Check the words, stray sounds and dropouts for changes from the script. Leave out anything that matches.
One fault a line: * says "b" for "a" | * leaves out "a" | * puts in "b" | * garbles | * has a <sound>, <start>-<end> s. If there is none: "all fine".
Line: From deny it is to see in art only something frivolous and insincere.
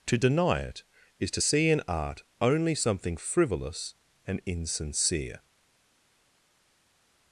* says "To" for "From"